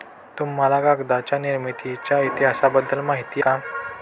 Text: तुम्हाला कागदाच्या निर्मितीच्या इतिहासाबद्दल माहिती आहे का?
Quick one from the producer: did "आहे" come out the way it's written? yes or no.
no